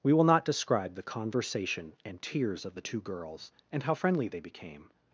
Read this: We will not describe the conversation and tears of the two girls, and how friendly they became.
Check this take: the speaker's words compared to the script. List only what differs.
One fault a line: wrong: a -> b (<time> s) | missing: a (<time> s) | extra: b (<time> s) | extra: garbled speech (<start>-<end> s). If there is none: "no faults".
no faults